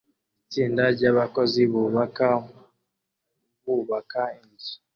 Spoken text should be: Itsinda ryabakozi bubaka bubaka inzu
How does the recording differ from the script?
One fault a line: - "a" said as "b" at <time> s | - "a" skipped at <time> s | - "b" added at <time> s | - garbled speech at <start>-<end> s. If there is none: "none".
none